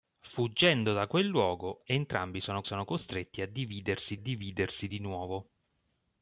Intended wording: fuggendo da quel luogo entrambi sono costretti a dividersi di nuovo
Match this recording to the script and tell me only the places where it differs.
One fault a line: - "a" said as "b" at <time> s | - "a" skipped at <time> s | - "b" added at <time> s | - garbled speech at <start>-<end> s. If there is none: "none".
- "sono" added at 2.6 s
- "dividersi" added at 4.1 s